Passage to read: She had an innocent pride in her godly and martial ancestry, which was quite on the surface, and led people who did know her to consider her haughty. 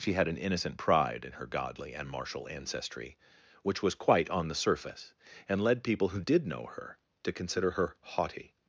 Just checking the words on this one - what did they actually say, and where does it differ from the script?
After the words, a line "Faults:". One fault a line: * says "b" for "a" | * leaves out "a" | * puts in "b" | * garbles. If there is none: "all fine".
She had an innocent pride in her godly and martial ancestry, which was quite on the surface, and led people who did know her to consider her haughty.
Faults:
all fine